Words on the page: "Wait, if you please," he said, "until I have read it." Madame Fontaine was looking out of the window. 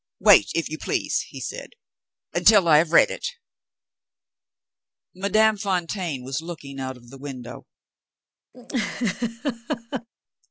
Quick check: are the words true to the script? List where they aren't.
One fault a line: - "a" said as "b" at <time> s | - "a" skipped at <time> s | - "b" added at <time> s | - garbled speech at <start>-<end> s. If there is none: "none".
none